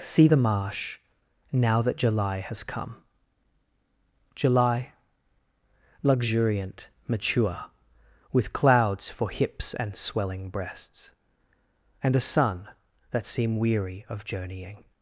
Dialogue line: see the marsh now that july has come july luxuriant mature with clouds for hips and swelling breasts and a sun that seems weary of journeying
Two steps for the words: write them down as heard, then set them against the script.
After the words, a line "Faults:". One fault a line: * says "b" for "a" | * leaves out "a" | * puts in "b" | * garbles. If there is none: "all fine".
see the marsh now that july has come july luxuriant mature with clouds for hips and swelling breasts and a sun that seem weary of journeying
Faults:
* says "seem" for "seems"